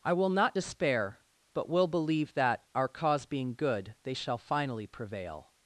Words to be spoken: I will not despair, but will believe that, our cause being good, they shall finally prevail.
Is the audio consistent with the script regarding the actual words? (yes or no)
yes